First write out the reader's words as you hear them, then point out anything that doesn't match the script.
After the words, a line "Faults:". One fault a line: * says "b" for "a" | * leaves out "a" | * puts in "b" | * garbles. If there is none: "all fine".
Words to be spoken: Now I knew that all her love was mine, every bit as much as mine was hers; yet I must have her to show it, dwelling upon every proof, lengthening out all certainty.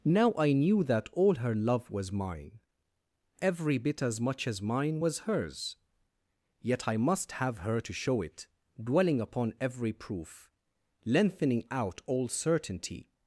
Now I knew that all her love was mine, every bit as much as mine was hers; yet I must have her to show it, dwelling upon every proof, lengthening out all certainty.
Faults:
all fine